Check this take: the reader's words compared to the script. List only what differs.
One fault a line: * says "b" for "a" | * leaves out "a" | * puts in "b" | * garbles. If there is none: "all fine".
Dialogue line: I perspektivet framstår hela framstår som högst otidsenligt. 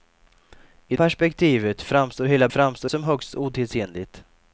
all fine